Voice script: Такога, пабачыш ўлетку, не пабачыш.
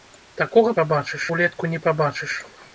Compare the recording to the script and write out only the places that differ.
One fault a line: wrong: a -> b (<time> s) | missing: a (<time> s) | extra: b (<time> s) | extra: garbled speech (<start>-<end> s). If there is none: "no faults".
no faults